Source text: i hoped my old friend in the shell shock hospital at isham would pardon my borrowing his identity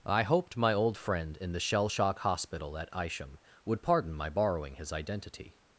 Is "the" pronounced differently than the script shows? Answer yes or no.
no